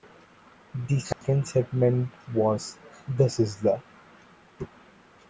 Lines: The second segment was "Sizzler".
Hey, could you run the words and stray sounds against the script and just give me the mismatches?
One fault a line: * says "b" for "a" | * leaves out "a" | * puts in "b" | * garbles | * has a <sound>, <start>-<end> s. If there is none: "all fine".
* has a dropout, 1.1-1.2 s
* puts in "The"